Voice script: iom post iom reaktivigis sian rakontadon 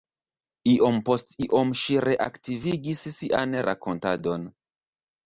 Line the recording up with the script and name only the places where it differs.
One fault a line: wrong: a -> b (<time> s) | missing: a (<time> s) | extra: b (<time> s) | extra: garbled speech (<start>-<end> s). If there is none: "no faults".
extra: ŝi (1.8 s)